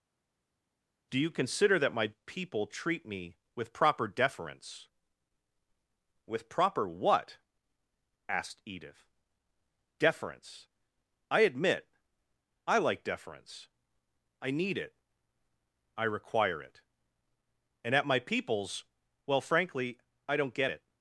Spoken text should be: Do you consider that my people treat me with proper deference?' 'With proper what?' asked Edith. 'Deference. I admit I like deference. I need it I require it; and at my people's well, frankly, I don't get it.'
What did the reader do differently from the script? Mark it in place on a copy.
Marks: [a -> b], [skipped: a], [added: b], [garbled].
Do you consider that my people treat me with proper deference?' 'With proper what?' asked Edith. 'Deference. I admit I like deference. I need it I require it; and at my people's well, frankly, I don't get it.'